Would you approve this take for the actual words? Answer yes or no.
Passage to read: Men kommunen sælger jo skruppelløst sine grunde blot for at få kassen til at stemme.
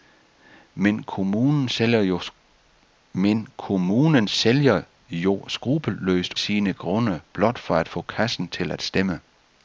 yes